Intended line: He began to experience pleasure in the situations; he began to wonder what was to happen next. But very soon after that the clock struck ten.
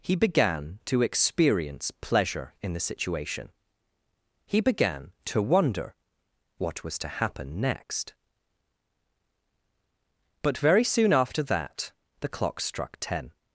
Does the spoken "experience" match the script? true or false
true